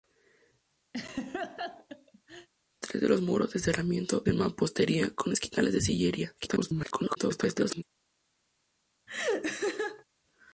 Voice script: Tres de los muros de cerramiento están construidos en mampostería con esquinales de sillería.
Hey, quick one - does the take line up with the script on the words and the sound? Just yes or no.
no